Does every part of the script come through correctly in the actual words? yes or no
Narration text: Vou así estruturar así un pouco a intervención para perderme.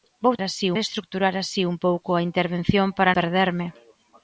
yes